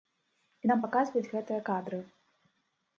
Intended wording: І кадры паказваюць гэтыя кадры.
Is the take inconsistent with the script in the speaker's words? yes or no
yes